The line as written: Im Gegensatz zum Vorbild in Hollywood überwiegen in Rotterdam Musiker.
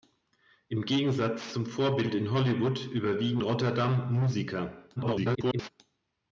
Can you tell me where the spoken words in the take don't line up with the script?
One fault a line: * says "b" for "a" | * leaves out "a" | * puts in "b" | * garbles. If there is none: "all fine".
* leaves out "in"
* garbles